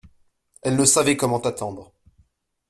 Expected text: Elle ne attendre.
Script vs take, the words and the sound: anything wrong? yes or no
yes